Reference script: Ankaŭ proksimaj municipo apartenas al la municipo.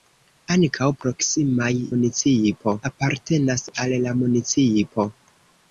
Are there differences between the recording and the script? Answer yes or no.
no